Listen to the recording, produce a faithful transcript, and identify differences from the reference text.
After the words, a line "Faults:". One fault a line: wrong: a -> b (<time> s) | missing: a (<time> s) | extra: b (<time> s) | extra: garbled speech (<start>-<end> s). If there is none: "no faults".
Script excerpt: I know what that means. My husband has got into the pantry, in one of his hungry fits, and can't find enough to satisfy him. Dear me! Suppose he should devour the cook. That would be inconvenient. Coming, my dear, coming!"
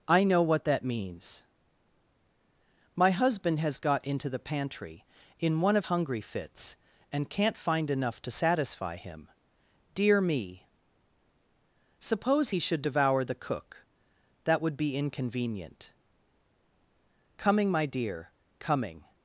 I know what that means. My husband has got into the pantry, in one of hungry fits, and can't find enough to satisfy him. Dear me! Suppose he should devour the cook. That would be inconvenient. Coming, my dear, coming!"
Faults:
missing: his (5.9 s)